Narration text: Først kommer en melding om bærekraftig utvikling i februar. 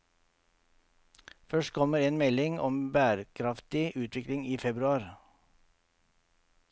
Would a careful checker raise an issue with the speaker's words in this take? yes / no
no